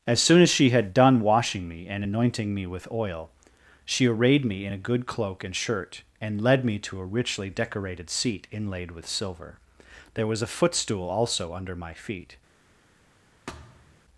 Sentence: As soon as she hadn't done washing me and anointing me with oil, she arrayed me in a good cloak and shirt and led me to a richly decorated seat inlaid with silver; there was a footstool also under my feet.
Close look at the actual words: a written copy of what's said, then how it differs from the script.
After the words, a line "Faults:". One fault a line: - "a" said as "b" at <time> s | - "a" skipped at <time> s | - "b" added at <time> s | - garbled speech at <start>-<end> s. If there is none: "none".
As soon as she had done washing me and anointing me with oil, she arrayed me in a good cloak and shirt and led me to a richly decorated seat inlaid with silver; there was a footstool also under my feet.
Faults:
- "hadn't" said as "had" at 0.7 s